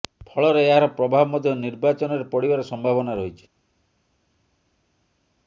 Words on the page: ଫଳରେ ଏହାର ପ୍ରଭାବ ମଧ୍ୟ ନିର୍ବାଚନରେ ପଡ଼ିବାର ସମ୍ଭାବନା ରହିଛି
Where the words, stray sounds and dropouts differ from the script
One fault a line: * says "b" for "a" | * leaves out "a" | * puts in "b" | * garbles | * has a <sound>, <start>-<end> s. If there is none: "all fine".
all fine